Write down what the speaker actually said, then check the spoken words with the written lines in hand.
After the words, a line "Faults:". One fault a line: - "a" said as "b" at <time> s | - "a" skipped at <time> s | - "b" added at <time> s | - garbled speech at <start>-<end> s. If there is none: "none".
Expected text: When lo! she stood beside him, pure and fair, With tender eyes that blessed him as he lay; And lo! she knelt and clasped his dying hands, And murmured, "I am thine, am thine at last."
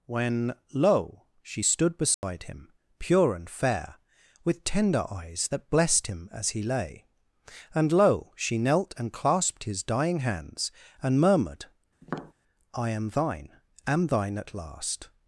When lo! she stood beside him, pure and fair, With tender eyes that blessed him as he lay; And lo! she knelt and clasped his dying hands, And murmured, "I am thine, am thine at last."
Faults:
none